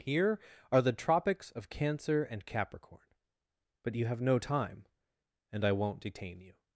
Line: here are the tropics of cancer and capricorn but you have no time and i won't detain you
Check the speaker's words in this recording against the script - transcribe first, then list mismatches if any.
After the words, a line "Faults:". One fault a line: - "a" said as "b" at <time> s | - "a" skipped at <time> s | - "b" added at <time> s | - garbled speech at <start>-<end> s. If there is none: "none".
here are the tropics of cancer and capricorn but you have no time and i won't detain you
Faults:
none